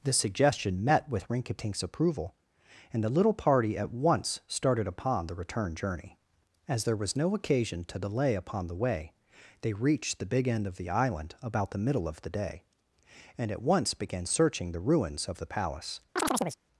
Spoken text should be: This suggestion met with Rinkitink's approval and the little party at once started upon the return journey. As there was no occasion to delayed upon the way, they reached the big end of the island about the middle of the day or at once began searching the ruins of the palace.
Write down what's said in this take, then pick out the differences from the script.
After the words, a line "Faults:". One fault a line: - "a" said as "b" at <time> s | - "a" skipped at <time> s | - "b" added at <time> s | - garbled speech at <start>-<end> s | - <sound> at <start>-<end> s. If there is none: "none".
This suggestion met with Rinkitink's approval and the little party at once started upon the return journey. As there was no occasion to delay upon the way, they reached the big end of the island about the middle of the day and at once began searching the ruins of the palace.
Faults:
- "delayed" said as "delay" at 8.0 s
- "or" said as "and" at 13.4 s
- chirp at 16.2-16.6 s